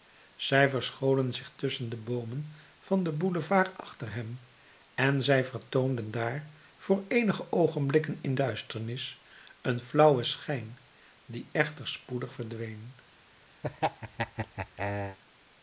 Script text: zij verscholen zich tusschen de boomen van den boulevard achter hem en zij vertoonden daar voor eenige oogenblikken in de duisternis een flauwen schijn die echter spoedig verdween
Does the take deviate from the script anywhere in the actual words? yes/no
yes